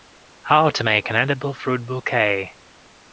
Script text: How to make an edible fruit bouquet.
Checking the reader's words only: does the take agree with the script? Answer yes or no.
yes